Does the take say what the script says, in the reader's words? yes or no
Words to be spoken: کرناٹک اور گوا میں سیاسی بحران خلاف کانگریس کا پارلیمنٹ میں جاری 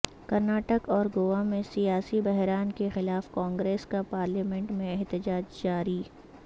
no